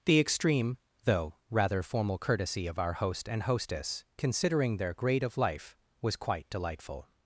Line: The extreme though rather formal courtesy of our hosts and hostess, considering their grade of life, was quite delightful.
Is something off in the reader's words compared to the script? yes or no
yes